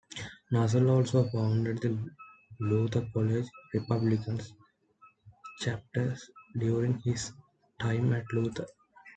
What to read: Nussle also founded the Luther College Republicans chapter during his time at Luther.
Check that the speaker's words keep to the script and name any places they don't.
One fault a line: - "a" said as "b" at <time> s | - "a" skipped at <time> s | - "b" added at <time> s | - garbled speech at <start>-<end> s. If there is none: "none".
none